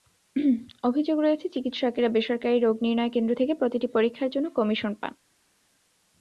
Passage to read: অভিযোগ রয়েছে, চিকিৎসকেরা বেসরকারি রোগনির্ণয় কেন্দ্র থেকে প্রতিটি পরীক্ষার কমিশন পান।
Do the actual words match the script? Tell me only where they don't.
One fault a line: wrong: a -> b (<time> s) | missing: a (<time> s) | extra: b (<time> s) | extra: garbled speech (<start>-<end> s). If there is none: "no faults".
extra: জন্য (4.3 s)